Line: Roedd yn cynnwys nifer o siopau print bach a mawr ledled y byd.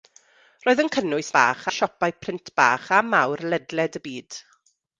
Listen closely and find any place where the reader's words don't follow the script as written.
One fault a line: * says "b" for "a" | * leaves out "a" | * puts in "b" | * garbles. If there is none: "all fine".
* says "bach" for "nifer"